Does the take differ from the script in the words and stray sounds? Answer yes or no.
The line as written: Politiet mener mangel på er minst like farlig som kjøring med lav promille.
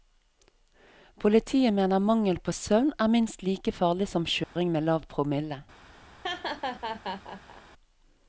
yes